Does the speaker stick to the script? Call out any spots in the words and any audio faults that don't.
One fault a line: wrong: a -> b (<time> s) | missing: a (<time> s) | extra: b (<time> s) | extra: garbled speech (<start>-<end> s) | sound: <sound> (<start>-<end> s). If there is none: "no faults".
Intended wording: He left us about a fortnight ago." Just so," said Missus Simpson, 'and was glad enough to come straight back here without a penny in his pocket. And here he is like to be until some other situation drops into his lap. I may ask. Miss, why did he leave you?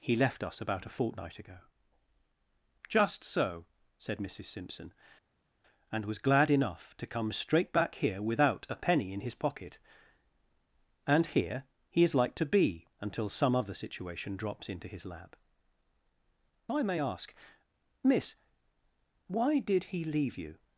no faults